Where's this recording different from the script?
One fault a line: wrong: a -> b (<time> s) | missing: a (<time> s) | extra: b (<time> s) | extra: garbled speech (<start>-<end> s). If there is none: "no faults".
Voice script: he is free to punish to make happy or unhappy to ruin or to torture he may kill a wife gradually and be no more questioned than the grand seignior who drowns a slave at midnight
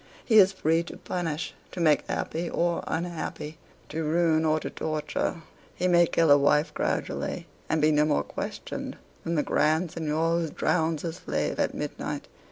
no faults